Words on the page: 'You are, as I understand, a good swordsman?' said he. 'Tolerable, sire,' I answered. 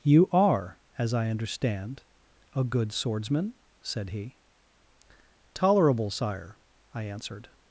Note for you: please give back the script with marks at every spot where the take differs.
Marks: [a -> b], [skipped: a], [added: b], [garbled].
'You are, as I understand, a good swordsman?' said he. 'Tolerable, sire,' I answered.